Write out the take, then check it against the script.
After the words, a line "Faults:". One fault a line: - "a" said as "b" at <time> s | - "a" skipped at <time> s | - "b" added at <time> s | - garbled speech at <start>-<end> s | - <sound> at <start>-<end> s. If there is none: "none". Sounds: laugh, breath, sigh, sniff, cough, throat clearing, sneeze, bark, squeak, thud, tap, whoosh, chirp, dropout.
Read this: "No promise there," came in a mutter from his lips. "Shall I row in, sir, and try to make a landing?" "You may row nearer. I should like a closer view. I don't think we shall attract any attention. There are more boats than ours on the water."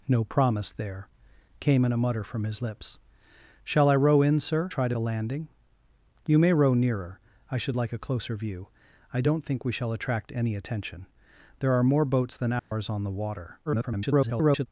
"No promise there," came in a mutter from his lips. "Shall I row in, sir, try to a landing?" "You may row nearer. I should like a closer view. I don't think we shall attract any attention. There are more boats than ours on the water." [garbled]
Faults:
- "and" skipped at 4.7 s
- "make" skipped at 5.0 s
- dropout at 12.6-12.7 s
- garbled speech at 13.7-14.7 s